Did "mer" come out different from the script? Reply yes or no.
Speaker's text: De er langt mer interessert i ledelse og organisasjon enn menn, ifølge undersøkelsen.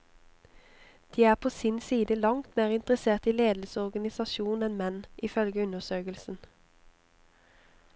no